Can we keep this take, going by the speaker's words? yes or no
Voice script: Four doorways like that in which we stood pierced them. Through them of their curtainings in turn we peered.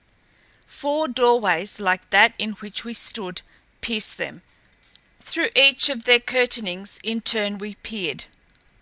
no